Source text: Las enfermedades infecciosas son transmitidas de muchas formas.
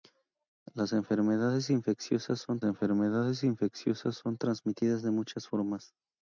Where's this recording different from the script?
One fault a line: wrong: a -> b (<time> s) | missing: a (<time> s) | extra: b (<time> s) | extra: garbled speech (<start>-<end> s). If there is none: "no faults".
extra: enfermedades infecciosas son (2.6 s)